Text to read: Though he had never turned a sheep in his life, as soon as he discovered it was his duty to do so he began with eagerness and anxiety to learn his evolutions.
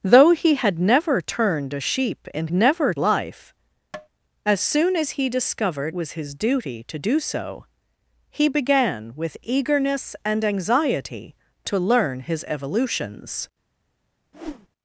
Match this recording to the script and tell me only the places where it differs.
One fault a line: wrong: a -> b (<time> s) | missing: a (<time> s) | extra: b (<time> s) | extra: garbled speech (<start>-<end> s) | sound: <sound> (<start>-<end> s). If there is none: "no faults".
wrong: his -> never (2.5 s)
sound: tap (3.9-4.1 s)
missing: it (5.9 s)
sound: whoosh (14.3-14.7 s)